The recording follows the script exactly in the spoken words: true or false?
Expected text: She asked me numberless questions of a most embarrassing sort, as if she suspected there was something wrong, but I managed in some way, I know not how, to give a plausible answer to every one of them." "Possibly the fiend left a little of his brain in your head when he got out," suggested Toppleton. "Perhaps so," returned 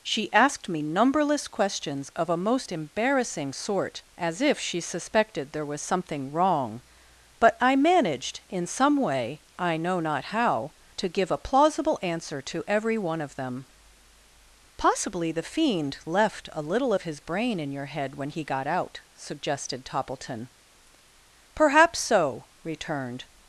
true